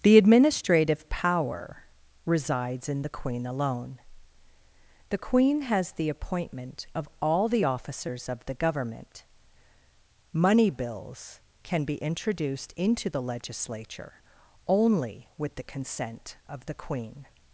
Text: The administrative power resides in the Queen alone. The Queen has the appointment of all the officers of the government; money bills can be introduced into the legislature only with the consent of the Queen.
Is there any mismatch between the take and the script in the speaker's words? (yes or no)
no